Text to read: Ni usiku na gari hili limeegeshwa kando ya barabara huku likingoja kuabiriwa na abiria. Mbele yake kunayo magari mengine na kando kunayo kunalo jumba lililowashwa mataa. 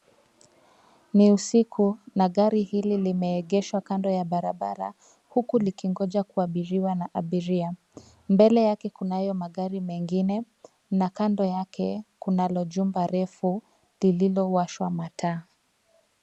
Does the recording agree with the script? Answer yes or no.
no